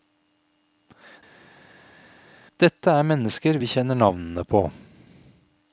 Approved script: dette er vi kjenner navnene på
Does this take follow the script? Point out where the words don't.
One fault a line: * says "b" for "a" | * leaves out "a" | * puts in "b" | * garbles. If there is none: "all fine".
* puts in "mennesker"